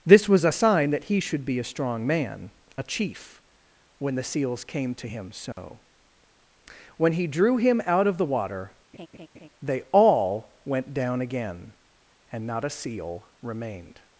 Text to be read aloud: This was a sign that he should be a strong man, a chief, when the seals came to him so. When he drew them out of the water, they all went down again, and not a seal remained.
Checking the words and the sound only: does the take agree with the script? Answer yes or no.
no